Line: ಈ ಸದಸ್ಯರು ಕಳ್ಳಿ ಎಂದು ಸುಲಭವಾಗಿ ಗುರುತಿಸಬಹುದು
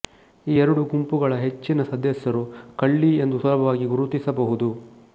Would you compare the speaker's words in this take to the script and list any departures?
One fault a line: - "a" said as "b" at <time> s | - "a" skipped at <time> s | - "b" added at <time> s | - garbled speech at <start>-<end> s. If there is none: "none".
- "ಎರಡು ಗುಂಪುಗಳ ಹೆಚ್ಚಿನ" added at 0.6 s